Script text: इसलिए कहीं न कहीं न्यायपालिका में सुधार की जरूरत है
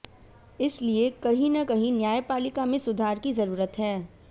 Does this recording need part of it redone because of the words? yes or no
no